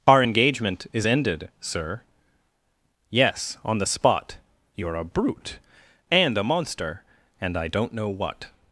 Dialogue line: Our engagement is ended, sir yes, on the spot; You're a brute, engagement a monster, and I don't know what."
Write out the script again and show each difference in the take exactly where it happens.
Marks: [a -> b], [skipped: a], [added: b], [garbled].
Our engagement is ended, sir yes, on the spot; You're a brute, [engagement -> and] a monster, and I don't know what."